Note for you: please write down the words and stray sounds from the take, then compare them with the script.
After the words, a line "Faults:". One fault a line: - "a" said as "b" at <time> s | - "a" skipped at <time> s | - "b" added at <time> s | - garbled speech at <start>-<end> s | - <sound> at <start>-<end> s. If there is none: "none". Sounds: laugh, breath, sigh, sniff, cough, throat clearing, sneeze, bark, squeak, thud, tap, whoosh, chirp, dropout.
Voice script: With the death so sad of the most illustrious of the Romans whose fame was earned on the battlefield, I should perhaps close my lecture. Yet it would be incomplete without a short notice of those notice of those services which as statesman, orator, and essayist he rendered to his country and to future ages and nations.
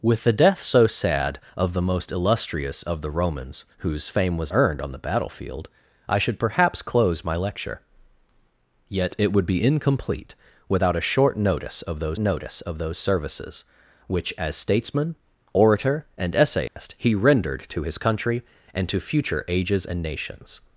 With the death so sad of the most illustrious of the Romans whose fame was earned on the battlefield, I should perhaps close my lecture. Yet it would be incomplete without a short notice of those notice of those services which as statesman, orator, and essayist he rendered to his country and to future ages and nations.
Faults:
- dropout at 16.7-16.8 s